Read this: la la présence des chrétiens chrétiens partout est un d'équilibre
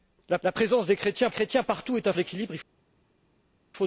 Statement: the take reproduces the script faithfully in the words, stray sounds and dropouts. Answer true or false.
true